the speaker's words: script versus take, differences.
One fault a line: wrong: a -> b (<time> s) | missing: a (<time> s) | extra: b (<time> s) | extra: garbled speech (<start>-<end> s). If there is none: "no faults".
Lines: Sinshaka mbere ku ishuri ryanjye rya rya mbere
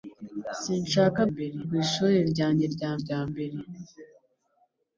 no faults